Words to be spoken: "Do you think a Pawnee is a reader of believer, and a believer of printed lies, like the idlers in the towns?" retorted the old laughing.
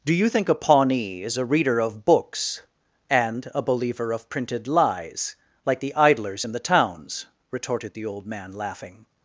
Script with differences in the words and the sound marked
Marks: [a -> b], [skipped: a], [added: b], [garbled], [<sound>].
"Do you think a Pawnee is a reader of [believer, -> books] and a believer of printed lies, like the idlers in the towns?" retorted the old [added: man] laughing.